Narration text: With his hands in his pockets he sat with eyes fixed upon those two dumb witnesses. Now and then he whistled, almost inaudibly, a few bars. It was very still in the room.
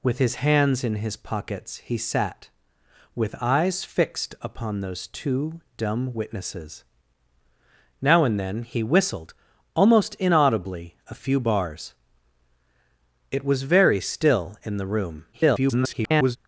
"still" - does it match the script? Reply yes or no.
yes